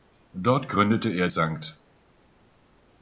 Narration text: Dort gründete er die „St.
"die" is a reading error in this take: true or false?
true